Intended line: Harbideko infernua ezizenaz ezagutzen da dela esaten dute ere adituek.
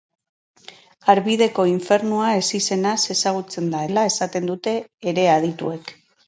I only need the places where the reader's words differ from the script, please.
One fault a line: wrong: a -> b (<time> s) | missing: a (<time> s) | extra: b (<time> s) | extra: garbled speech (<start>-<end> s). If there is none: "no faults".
no faults